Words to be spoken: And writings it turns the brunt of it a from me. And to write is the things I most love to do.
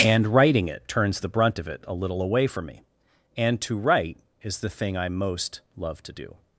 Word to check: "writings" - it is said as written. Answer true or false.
false